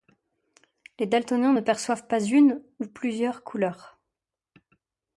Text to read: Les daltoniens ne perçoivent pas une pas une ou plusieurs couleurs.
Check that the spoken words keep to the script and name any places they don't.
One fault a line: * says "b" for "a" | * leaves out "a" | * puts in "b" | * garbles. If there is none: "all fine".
* leaves out "pas une"